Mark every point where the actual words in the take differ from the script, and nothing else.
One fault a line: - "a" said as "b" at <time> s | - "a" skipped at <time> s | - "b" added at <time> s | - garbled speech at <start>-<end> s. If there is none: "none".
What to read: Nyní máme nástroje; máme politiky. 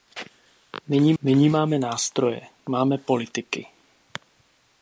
- "nyní" added at 1.2 s